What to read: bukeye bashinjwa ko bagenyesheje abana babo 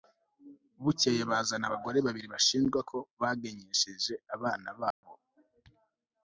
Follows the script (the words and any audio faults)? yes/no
no